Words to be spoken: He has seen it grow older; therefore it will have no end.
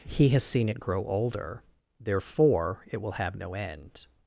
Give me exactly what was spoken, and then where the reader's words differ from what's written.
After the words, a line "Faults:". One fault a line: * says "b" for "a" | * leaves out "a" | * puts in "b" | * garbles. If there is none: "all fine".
He has seen it grow older; therefore it will have no end.
Faults:
all fine